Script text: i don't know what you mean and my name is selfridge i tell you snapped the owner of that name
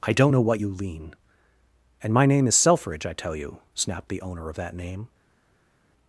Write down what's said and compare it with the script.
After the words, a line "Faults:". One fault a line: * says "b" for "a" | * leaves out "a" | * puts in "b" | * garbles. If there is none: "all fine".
i don't know what you lean and my name is selfridge i tell you snapped the owner of that name
Faults:
* says "lean" for "mean"